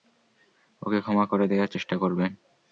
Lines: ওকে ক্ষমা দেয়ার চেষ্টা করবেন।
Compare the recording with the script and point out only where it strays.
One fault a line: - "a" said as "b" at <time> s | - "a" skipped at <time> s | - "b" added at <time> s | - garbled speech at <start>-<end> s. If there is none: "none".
- "করে" added at 1.2 s